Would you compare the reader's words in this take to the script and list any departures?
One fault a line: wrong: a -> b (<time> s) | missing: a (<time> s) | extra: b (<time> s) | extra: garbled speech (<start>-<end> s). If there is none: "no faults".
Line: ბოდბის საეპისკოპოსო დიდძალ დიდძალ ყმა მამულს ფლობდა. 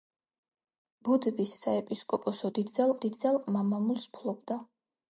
no faults